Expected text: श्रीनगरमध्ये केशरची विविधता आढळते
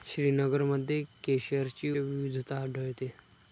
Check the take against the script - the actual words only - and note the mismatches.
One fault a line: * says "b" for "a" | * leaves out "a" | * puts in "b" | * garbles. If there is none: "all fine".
all fine